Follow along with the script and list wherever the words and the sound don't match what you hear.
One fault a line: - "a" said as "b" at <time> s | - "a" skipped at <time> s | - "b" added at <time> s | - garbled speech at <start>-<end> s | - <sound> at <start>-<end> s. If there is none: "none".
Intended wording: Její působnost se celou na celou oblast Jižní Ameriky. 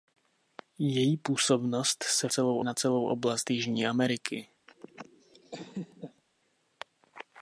- laugh at 4.7-6.2 s